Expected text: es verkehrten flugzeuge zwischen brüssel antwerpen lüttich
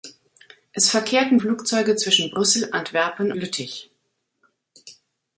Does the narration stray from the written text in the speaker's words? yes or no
no